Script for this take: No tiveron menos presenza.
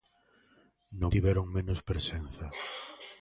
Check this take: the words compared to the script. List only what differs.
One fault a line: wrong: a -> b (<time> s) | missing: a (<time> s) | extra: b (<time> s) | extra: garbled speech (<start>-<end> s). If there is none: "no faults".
no faults